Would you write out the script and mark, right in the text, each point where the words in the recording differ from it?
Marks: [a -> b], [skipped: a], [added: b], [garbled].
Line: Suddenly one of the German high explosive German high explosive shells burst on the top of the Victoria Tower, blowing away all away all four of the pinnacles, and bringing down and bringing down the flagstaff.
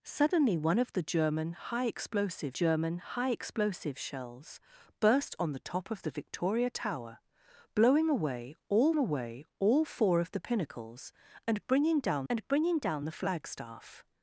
Suddenly one of the German high explosive German high explosive shells burst on the top of the Victoria Tower, blowing away all away all four of the pinnacles, and bringing down and bringing down the flagstaff.